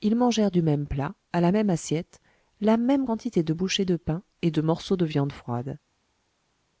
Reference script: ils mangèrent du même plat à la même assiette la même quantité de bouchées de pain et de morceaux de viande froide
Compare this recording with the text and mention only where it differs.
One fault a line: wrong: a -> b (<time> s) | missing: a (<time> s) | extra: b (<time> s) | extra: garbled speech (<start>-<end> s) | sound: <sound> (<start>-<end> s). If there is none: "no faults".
no faults